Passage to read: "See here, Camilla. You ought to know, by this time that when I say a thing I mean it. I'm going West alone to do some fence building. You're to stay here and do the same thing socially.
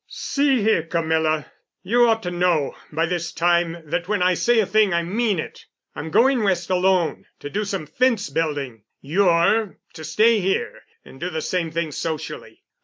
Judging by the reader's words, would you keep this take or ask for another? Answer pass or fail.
pass